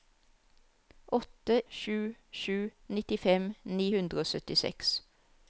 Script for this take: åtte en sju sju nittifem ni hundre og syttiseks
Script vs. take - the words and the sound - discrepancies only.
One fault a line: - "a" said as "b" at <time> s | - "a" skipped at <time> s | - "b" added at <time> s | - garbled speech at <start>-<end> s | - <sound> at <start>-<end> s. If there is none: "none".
- "en" skipped at 1.6 s